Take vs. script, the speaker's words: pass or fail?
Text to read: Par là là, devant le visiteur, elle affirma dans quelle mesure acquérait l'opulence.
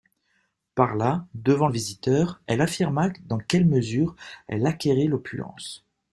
fail